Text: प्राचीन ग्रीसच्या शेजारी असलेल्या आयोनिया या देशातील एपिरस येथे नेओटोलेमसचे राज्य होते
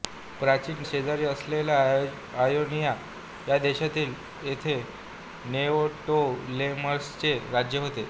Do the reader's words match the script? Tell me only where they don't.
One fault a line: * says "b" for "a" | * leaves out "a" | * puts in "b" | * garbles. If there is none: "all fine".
* leaves out "ग्रीसच्या"
* leaves out "एपिरस"